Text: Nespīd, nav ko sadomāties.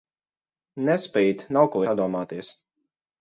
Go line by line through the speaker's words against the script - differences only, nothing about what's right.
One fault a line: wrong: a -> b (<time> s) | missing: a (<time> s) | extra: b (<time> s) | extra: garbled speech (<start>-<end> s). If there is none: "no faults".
no faults